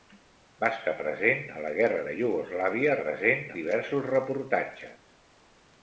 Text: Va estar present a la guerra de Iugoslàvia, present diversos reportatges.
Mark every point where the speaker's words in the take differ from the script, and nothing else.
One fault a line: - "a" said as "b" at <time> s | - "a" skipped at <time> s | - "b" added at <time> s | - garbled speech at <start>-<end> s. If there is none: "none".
none